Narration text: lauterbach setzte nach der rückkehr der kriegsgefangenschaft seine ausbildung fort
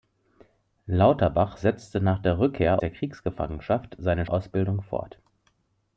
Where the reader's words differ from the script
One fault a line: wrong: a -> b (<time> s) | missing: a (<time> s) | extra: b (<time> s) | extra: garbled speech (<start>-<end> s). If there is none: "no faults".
no faults